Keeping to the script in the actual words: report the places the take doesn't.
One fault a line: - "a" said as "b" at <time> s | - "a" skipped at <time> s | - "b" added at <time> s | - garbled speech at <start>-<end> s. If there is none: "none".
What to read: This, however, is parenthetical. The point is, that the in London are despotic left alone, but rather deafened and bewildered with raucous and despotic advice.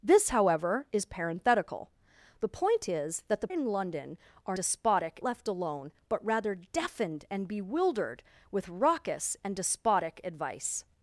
none